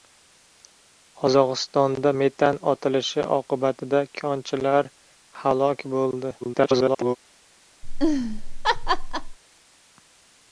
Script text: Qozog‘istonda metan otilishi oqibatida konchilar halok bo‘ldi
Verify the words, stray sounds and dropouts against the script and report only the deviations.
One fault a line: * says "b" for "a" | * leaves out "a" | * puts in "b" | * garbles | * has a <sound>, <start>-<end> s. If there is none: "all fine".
* garbles
* has a laugh, 7.8-9.4 s